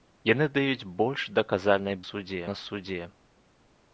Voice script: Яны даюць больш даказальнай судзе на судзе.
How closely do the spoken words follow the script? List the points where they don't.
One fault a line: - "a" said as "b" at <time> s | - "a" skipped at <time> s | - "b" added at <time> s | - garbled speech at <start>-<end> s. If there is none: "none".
none